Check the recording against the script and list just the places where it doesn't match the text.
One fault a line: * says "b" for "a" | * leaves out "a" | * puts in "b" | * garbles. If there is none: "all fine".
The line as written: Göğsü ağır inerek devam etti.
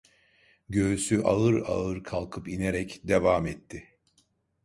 * puts in "ağır kalkıp"